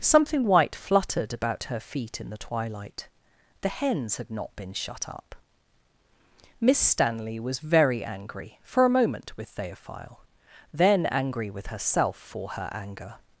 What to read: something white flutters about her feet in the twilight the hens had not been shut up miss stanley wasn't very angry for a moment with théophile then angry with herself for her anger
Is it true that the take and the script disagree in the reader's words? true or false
true